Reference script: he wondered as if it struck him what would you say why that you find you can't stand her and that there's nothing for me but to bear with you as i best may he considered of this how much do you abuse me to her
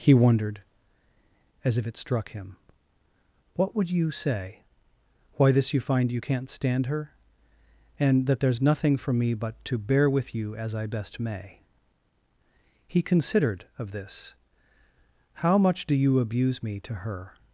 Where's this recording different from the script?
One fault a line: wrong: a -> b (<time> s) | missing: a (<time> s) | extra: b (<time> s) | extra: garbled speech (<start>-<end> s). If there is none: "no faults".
wrong: that -> this (5.5 s)